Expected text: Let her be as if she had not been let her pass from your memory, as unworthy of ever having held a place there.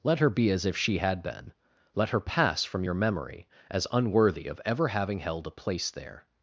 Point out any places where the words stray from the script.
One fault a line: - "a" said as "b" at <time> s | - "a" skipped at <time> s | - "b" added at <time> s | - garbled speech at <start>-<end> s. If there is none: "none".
- "not" skipped at 1.2 s